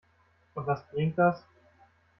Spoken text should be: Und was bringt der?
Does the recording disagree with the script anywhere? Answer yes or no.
yes